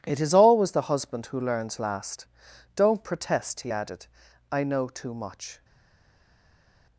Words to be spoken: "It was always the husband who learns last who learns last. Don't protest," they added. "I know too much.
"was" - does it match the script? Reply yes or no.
no